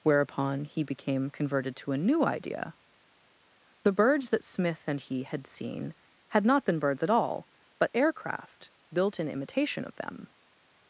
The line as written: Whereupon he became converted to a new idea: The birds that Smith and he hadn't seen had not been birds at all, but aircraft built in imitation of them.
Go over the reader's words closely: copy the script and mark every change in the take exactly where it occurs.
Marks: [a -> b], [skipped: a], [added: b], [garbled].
Whereupon he became converted to a new idea: The birds that Smith and he [hadn't -> had] seen had not been birds at all, but aircraft built in imitation of them.